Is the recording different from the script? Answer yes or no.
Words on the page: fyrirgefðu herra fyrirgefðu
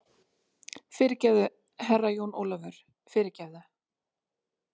yes